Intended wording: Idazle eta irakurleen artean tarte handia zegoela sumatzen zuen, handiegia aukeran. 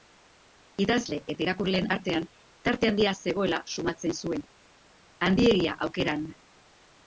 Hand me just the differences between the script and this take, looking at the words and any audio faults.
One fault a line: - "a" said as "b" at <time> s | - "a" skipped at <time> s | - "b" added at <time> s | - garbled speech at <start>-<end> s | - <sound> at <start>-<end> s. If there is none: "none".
none